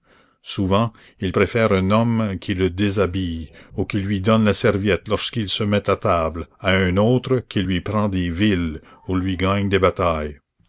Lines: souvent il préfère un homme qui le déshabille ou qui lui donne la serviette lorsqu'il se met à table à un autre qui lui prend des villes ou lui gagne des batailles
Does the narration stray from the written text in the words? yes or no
no